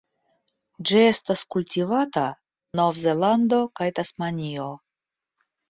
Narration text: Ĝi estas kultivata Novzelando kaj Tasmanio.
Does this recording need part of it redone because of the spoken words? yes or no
no